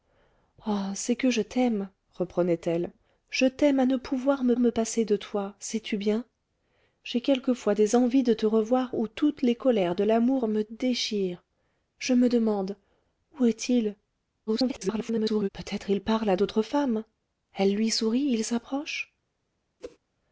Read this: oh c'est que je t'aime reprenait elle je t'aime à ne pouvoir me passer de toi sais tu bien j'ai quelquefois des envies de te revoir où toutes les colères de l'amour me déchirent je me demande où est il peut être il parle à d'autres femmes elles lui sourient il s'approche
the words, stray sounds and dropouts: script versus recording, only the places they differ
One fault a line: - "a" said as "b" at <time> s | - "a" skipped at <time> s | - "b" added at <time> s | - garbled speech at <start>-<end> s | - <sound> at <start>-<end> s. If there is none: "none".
- "me" added at 4.6 s
- garbled speech at 14.5-15.5 s
- whoosh at 19.8-20.0 s